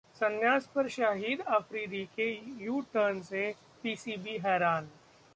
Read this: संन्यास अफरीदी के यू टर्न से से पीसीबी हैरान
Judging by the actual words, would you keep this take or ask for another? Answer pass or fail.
fail